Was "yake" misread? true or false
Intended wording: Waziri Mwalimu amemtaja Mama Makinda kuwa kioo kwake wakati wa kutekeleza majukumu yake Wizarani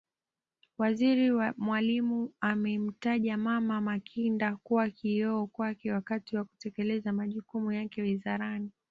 false